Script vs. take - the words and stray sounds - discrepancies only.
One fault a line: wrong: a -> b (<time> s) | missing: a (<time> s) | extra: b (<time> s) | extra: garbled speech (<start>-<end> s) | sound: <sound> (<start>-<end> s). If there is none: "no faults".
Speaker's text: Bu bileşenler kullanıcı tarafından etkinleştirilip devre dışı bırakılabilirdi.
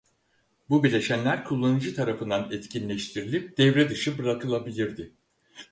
no faults